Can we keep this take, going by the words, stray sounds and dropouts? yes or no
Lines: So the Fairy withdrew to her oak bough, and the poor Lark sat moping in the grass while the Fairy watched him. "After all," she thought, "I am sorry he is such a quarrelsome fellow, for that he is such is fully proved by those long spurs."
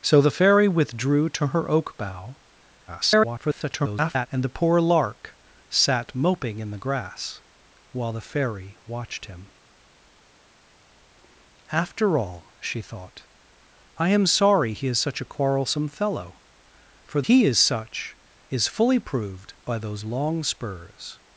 no